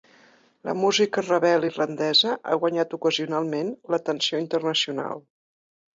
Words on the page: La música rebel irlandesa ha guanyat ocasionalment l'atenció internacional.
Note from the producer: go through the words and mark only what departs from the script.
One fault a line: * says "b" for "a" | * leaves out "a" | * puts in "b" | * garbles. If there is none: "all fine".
all fine